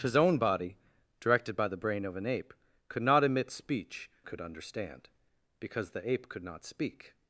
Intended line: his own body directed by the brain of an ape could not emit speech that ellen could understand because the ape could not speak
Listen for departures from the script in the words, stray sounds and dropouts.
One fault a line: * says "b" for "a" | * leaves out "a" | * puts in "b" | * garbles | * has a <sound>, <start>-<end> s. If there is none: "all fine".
* leaves out "that ellen"